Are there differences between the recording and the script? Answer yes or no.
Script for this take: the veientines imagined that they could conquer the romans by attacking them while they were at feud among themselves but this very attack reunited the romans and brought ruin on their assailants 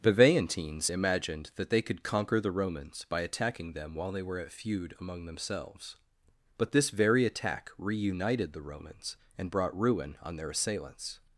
no